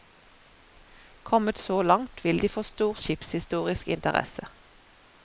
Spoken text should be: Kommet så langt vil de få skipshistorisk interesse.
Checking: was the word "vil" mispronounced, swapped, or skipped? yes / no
no